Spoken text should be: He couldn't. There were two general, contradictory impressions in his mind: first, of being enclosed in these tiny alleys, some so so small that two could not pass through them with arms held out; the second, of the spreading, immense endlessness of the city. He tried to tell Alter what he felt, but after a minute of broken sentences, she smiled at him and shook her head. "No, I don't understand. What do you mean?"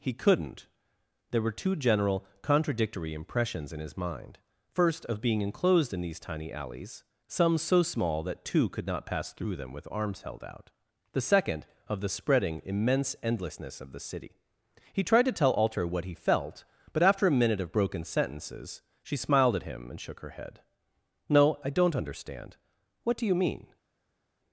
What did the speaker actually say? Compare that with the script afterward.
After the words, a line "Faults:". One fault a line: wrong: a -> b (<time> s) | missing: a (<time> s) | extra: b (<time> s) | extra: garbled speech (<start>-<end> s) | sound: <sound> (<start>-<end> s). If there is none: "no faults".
He couldn't. There were two general, contradictory impressions in his mind: first, of being enclosed in these tiny alleys, some so small that two could not pass through them with arms held out; the second, of the spreading, immense endlessness of the city. He tried to tell Alter what he felt, but after a minute of broken sentences, she smiled at him and shook her head. "No, I don't understand. What do you mean?"
Faults:
missing: so (7.8 s)